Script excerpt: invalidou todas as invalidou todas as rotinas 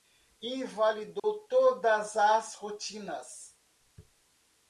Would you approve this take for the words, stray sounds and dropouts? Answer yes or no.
no